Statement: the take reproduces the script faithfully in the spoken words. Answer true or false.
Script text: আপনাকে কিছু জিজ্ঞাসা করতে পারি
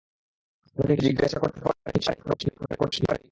false